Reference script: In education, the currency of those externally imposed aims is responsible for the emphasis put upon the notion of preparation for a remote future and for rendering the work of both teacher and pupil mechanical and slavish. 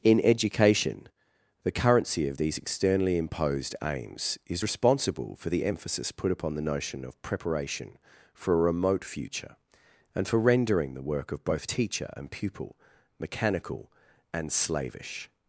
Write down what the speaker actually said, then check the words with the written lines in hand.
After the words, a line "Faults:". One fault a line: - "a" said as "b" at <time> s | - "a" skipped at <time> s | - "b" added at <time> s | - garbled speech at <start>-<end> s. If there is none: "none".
In education, the currency of these externally imposed aims is responsible for the emphasis put upon the notion of preparation for a remote future and for rendering the work of both teacher and pupil mechanical and slavish.
Faults:
- "those" said as "these" at 2.4 s